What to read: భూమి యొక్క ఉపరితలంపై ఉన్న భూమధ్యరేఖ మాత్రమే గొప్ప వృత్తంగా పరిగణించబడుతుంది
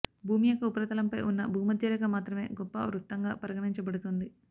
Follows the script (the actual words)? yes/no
yes